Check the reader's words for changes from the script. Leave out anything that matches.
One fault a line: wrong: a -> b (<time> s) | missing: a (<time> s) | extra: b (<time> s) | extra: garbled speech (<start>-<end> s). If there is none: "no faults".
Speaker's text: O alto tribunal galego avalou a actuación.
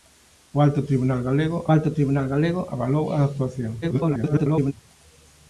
extra: alto tribunal galego (1.7 s)
extra: garbled speech (3.8-4.7 s)